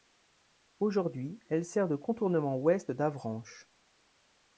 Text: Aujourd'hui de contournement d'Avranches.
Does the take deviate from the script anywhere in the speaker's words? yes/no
yes